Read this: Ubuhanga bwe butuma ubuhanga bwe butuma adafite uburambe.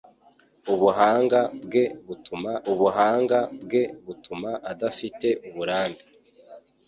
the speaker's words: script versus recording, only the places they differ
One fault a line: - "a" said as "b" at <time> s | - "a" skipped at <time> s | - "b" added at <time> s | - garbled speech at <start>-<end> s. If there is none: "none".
none